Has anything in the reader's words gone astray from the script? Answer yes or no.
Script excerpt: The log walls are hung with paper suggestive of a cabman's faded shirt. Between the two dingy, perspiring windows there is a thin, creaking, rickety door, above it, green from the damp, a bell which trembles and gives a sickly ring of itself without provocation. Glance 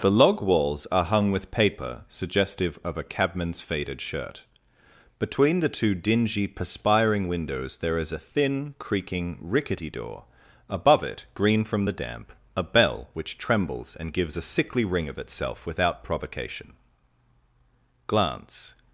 no